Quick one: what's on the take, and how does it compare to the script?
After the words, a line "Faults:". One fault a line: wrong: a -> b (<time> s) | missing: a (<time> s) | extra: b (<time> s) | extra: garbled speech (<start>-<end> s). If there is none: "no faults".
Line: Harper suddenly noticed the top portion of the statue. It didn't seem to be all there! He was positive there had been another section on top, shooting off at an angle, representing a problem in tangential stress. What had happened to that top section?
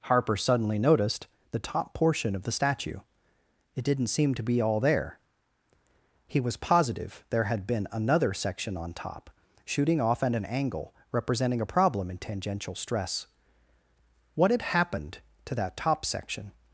Harper suddenly noticed the top portion of the statue. It didn't seem to be all there! He was positive there had been another section on top, shooting off at an angle, representing a problem in tangential stress. What had happened to that top section?
Faults:
no faults